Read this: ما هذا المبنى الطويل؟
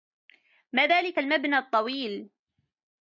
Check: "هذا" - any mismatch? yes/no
yes